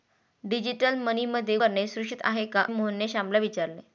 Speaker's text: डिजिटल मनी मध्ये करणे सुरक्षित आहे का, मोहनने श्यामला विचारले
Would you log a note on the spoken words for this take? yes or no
no